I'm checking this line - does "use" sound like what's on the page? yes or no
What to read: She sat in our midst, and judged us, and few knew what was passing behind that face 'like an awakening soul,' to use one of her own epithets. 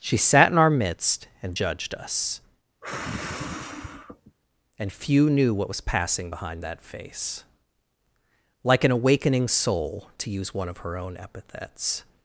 yes